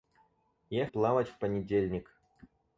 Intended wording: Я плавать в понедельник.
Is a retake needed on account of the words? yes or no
no